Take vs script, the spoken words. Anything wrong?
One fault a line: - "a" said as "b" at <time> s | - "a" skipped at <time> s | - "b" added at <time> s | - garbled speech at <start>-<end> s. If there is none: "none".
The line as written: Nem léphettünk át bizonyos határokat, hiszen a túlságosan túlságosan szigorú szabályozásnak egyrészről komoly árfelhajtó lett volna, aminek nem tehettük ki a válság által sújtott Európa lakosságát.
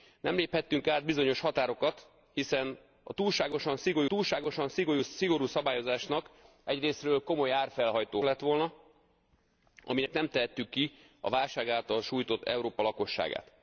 none